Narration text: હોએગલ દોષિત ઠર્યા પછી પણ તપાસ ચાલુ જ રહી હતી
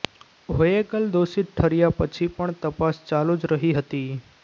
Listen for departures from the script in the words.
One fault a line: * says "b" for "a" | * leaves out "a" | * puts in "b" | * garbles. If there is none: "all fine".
all fine